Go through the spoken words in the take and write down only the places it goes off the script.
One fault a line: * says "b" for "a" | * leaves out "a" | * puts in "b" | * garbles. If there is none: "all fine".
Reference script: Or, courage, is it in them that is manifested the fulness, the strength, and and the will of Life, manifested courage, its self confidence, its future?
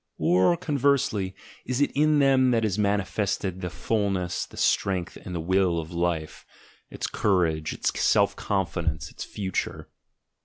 * says "conversely" for "courage"
* leaves out "and"
* says "its" for "manifested"